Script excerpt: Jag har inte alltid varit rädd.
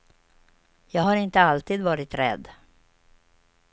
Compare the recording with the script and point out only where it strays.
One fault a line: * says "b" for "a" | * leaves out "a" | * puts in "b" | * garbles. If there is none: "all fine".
all fine